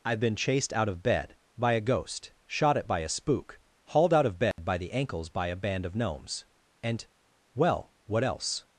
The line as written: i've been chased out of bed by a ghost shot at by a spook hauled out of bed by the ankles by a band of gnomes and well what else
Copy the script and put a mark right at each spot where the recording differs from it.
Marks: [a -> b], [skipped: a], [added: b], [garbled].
i've been chased out of bed by a ghost shot at by a spook hauled out of bed by the ankles by a band of gnomes and well what else